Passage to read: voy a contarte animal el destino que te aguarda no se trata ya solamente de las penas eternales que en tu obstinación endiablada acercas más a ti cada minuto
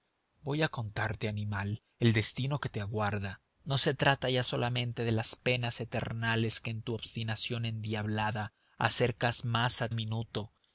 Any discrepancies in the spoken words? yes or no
yes